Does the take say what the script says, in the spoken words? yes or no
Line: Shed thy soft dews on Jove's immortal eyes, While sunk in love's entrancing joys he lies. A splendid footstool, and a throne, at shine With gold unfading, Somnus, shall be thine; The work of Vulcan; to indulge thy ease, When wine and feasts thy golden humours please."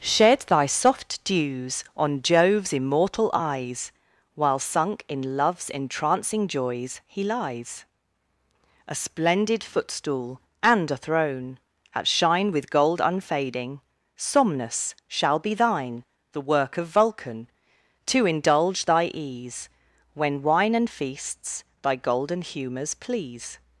yes